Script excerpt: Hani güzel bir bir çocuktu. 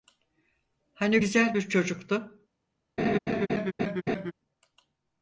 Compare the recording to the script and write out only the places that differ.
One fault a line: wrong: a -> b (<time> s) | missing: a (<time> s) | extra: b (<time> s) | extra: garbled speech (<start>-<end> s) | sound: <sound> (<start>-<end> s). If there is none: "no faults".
missing: bir (1.7 s)
sound: laugh (3.0-4.3 s)